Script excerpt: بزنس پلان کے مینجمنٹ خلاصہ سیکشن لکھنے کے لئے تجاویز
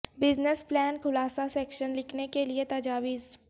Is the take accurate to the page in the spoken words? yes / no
no